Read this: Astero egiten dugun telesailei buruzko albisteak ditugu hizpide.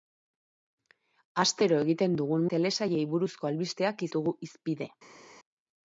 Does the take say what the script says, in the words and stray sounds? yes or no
yes